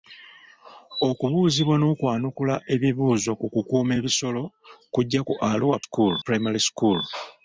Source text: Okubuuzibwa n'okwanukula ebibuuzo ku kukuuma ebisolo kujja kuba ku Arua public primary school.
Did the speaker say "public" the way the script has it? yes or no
no